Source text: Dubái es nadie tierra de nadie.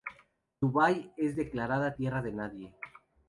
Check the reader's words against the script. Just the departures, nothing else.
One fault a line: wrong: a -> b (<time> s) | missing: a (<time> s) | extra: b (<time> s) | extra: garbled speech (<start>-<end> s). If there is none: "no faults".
wrong: nadie -> declarada (1.3 s)